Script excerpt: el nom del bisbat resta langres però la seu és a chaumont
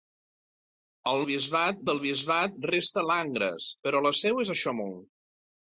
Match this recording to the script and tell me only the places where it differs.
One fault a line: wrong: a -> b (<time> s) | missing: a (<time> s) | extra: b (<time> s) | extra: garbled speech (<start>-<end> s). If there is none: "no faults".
wrong: nom -> bisbat (1.3 s)